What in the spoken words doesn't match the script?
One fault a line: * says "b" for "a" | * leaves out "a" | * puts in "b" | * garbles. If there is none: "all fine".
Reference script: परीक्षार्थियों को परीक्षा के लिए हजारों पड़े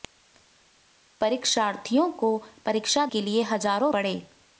all fine